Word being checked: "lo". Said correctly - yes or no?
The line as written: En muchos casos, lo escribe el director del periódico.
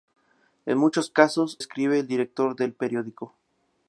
no